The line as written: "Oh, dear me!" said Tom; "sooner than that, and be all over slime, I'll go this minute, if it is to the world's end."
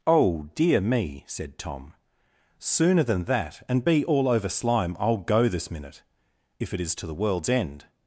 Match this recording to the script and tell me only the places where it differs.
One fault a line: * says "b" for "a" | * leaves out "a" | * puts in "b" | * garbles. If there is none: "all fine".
all fine